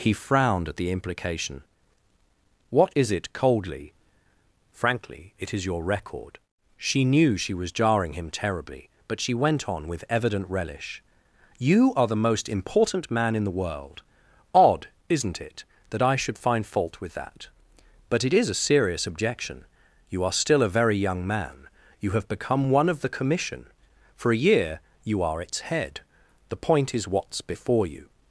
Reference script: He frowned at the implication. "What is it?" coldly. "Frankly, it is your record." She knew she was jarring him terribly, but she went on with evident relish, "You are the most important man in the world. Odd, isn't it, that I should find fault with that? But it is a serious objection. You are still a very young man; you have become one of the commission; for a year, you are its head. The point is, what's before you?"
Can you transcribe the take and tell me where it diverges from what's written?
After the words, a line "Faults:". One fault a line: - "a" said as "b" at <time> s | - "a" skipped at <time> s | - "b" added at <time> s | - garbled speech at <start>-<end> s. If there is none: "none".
He frowned at the implication. "What is it?" coldly. "Frankly, it is your record." She knew she was jarring him terribly, but she went on with evident relish, "You are the most important man in the world. Odd, isn't it, that I should find fault with that? But it is a serious objection. You are still a very young man; you have become one of the commission; for a year, you are its head. The point is, what's before you?"
Faults:
none